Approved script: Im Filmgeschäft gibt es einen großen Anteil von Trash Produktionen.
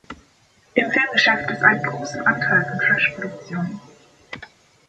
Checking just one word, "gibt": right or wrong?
wrong